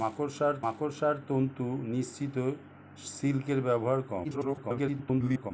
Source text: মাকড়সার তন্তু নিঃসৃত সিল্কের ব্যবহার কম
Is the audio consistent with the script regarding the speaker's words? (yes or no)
no